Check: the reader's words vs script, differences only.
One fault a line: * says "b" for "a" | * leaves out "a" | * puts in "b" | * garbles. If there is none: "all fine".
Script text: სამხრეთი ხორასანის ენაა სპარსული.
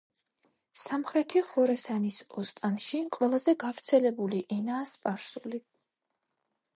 * puts in "ოსტანში ყველაზე გავრცელებული"